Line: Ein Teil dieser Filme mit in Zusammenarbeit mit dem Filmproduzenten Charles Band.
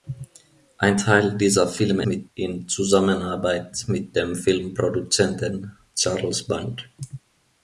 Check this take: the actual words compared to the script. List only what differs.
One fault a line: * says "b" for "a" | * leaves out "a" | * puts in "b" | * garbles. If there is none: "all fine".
all fine